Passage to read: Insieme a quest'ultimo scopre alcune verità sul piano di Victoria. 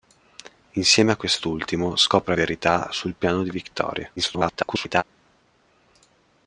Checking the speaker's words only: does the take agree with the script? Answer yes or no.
no